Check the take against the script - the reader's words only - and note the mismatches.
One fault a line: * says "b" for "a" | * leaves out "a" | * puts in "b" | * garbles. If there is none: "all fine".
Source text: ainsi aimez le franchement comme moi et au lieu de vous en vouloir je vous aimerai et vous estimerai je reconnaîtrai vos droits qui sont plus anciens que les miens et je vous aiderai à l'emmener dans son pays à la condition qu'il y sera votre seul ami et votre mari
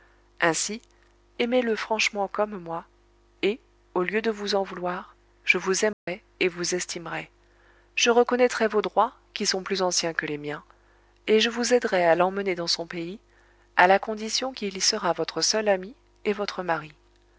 all fine